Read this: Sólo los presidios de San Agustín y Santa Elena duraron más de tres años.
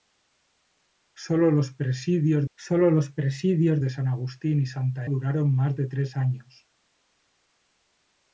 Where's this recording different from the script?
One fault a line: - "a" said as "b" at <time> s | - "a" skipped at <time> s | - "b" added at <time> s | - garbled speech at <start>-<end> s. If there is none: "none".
- "sólo los presidios" added at 2.5 s
- "Elena" skipped at 5.0 s